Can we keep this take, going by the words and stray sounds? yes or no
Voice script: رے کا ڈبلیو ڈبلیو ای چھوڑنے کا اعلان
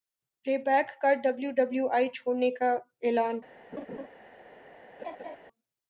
no